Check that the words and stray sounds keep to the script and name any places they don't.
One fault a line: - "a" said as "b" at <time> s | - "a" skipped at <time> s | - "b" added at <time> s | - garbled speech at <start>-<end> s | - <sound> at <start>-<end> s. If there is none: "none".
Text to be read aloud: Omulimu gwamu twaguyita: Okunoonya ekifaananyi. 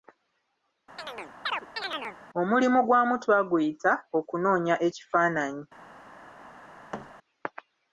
- chirp at 1.0-2.2 s
- thud at 6.9-7.1 s